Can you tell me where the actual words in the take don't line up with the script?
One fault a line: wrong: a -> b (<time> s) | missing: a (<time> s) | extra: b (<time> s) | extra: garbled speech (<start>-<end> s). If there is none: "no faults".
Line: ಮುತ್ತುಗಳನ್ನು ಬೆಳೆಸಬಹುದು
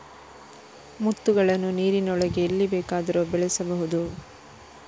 extra: ನೀರಿನೊಳಗೆ ಎಲ್ಲಿ ಬೇಕಾದರೂ (1.8 s)